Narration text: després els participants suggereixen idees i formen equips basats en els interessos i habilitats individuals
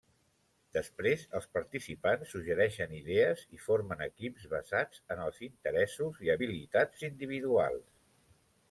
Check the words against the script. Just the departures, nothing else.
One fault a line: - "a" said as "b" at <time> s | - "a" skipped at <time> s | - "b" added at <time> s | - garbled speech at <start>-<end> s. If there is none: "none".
none